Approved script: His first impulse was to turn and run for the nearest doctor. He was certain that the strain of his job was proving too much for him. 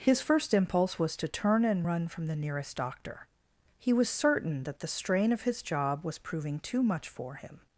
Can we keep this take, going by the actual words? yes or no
no